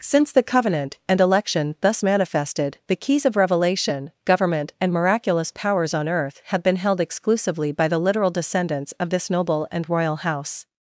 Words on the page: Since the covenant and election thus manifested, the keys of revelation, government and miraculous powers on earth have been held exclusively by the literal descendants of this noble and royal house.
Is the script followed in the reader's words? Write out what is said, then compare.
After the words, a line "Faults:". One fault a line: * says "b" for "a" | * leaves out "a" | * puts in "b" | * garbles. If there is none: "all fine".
Since the covenant and election thus manifested, the keys of revelation, government and miraculous powers on earth have been held exclusively by the literal descendants of this noble and royal house.
Faults:
all fine